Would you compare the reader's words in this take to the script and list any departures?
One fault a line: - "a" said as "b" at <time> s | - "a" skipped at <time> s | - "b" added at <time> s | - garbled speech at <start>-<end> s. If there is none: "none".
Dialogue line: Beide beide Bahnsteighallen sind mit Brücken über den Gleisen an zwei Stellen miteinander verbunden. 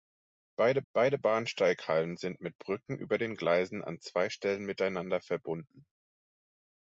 none